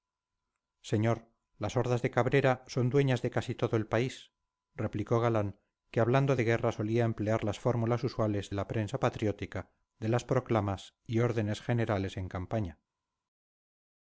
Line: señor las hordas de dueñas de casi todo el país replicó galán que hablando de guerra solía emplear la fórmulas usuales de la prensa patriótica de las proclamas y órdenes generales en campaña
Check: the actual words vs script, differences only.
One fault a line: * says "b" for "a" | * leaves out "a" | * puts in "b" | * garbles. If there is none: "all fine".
* puts in "cabrera son"
* says "las" for "la"